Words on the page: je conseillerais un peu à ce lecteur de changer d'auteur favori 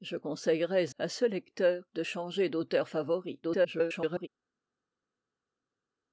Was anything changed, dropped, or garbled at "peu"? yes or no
yes